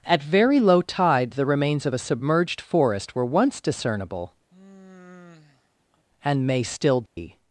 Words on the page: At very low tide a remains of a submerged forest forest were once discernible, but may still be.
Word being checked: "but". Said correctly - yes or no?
no